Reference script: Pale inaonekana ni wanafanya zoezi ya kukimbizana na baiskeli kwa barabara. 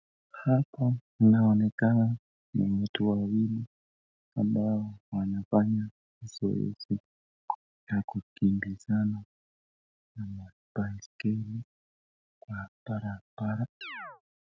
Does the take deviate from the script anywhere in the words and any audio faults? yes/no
yes